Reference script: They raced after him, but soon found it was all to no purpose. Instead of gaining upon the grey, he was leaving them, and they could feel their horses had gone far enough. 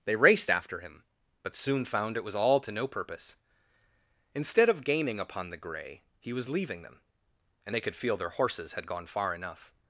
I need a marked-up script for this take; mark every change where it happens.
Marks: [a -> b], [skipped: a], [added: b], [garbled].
They raced after him, but soon found it was all to no purpose. Instead of gaining upon the grey, he was leaving them, and they could feel their horses had gone far enough.